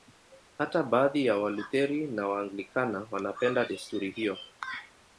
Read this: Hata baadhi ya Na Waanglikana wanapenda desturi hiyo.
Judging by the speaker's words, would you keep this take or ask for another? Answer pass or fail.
fail